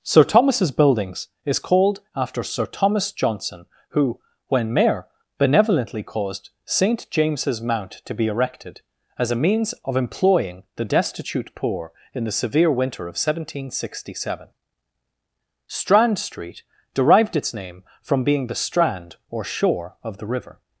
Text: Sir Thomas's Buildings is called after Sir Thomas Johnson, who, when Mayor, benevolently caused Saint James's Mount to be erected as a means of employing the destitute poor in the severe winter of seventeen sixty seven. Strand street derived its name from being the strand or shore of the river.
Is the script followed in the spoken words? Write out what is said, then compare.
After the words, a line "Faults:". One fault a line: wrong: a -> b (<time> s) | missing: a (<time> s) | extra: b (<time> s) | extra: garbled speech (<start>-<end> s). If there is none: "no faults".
Sir Thomas's Buildings is called after Sir Thomas Johnson, who, when Mayor, benevolently caused Saint James's Mount to be erected as a means of employing the destitute poor in the severe winter of seventeen sixty seven. Strand street derived its name from being the strand or shore of the river.
Faults:
no faults